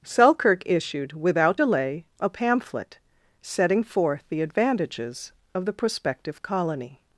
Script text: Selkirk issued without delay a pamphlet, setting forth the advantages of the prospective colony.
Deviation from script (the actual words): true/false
false